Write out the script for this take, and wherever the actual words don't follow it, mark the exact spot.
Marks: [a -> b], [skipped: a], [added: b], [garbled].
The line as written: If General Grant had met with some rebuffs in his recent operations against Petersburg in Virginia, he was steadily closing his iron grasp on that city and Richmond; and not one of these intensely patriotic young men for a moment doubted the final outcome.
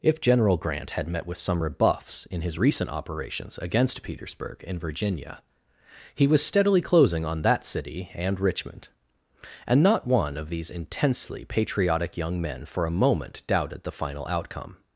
If General Grant had met with some rebuffs in his recent operations against Petersburg in Virginia, he was steadily closing [skipped: his iron grasp] on that city and Richmond; and not one of these intensely patriotic young men for a moment doubted the final outcome.